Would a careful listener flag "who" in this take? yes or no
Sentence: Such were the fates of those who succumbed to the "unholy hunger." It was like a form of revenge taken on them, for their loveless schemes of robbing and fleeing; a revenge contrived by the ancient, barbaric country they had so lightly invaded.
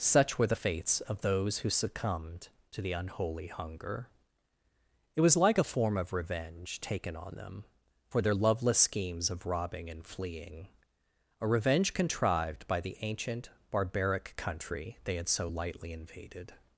no